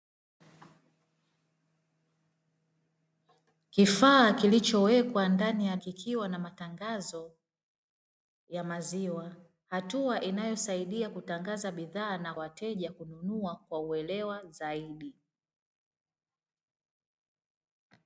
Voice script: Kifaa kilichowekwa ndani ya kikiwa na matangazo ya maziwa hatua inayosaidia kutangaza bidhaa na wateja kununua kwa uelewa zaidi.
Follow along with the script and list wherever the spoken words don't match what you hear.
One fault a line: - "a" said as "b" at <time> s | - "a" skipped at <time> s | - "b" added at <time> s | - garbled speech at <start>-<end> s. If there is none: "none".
none